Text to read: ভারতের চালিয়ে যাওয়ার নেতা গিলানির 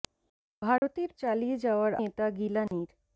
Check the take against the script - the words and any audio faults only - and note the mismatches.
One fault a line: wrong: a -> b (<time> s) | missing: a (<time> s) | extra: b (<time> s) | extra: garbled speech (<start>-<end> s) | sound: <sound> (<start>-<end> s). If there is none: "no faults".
sound: dropout (0.8-0.8 s)
sound: dropout (2.7-2.7 s)